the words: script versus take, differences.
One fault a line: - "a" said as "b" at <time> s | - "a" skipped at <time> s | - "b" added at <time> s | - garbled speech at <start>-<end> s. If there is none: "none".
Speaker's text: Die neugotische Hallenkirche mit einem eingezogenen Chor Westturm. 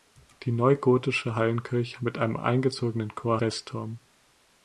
none